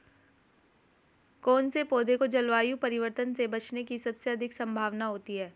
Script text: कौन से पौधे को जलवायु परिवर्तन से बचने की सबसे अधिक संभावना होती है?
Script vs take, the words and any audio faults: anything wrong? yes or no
no